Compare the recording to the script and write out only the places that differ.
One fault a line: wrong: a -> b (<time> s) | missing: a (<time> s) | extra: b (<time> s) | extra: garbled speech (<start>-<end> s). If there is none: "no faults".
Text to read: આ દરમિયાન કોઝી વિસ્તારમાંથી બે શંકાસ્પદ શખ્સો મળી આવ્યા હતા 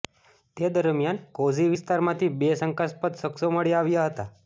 wrong: આ -> તે (0.6 s)